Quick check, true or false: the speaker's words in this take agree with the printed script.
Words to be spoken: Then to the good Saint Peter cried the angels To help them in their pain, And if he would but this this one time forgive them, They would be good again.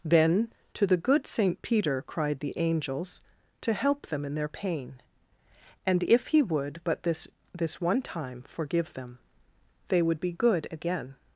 true